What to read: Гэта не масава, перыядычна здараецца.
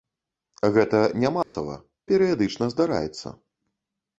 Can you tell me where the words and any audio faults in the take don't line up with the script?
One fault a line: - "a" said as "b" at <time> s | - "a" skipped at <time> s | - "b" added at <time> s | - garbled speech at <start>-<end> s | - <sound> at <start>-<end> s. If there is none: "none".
- dropout at 1.4-1.5 s